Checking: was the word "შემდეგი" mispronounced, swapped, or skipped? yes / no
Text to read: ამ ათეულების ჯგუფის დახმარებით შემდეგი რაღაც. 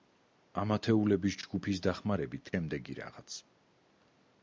no